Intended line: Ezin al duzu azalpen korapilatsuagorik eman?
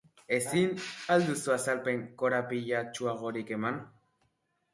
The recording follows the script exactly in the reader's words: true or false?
true